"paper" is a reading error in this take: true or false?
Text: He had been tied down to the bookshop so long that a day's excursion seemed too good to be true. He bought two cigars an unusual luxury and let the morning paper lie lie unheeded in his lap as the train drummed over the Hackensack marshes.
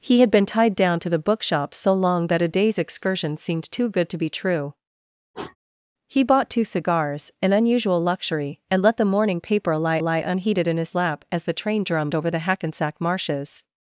false